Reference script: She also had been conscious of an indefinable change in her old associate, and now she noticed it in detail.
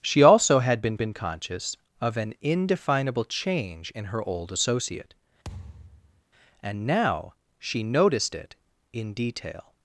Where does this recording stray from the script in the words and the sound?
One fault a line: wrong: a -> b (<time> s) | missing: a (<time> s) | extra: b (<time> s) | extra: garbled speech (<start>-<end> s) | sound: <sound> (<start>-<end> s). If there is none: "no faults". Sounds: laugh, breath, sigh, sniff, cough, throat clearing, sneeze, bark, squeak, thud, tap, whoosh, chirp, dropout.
extra: been (1.0 s)
sound: thud (5.4-6.2 s)